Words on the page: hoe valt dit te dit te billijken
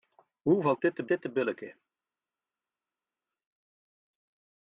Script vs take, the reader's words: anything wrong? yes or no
no